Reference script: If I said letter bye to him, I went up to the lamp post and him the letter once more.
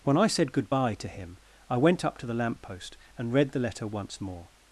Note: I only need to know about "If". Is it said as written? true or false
false